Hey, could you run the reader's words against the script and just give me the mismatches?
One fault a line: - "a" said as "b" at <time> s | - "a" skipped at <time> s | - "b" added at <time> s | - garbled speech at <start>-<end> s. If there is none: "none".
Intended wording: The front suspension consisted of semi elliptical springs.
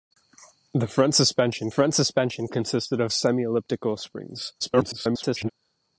- "front suspension" added at 1.7 s
- garbled speech at 4.6-5.5 s